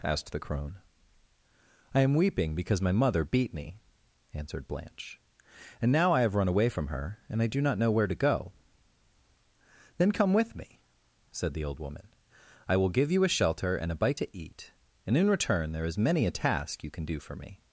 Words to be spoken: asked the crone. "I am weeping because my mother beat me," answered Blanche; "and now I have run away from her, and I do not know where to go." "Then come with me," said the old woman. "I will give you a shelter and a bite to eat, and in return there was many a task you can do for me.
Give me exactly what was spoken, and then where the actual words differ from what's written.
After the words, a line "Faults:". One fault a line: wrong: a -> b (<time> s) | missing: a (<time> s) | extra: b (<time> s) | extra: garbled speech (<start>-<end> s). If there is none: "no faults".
asked the crone. "I am weeping because my mother beat me," answered Blanche; "and now I have run away from her, and I do not know where to go." "Then come with me," said the old woman. "I will give you a shelter and a bite to eat, and in return there is many a task you can do for me.
Faults:
wrong: was -> is (15.8 s)